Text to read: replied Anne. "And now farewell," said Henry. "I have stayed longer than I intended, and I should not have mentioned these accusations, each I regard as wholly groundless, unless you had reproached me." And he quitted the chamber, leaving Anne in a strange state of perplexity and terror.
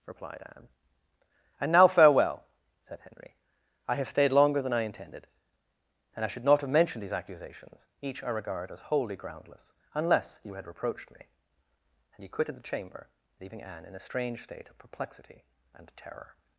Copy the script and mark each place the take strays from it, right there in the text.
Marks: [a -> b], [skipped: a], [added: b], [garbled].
replied Anne. "And now farewell," said Henry. "I have stayed longer than I intended, and I should not have mentioned these accusations, each I regard as wholly groundless, unless you had reproached me." And he quitted the chamber, leaving Anne in a strange state of perplexity and terror.